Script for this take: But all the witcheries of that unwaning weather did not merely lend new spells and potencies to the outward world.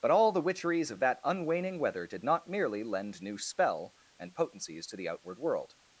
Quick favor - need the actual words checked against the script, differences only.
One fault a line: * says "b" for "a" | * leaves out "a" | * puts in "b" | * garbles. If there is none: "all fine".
* says "spell" for "spells"